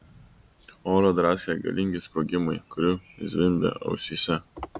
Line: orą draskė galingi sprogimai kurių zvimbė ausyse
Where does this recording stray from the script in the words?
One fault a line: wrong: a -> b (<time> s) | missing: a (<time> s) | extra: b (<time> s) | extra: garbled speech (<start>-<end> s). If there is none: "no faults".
no faults